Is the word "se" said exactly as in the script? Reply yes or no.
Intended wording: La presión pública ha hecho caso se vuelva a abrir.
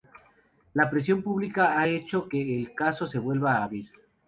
yes